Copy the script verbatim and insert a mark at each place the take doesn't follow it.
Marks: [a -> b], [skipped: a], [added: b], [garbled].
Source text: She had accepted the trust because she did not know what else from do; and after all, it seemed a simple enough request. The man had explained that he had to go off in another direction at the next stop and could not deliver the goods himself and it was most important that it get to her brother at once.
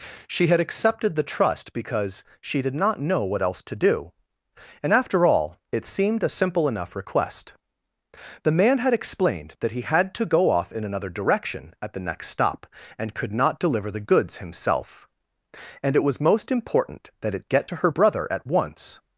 She had accepted the trust because she did not know what else [from -> to] do; and after all, it seemed a simple enough request. The man had explained that he had to go off in another direction at the next stop and could not deliver the goods himself and it was most important that it get to her brother at once.